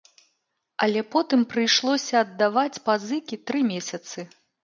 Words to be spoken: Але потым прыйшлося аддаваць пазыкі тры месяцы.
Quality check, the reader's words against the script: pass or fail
pass